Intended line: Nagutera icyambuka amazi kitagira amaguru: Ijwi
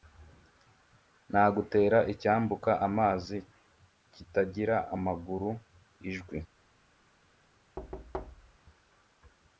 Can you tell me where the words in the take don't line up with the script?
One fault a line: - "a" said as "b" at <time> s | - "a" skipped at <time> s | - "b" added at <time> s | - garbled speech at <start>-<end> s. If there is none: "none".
none